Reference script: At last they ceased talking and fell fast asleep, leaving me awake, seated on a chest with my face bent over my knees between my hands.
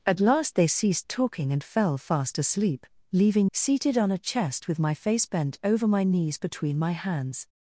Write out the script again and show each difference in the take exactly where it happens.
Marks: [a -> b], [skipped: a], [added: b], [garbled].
At last they ceased talking and fell fast asleep, leaving [skipped: me awake,] seated on a chest with my face bent over my knees between my hands.